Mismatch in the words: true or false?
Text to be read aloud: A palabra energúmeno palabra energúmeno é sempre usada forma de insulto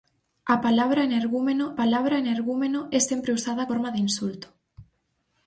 false